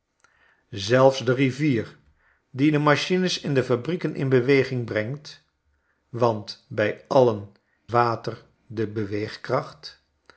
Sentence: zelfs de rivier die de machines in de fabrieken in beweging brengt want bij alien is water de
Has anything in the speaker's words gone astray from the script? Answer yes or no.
yes